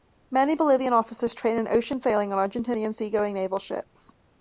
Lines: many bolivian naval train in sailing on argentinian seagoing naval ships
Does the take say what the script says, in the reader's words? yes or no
no